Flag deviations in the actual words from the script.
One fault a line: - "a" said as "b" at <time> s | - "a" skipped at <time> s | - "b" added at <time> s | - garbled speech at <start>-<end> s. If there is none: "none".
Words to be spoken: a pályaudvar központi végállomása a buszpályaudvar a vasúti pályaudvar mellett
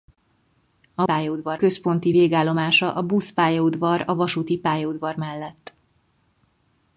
none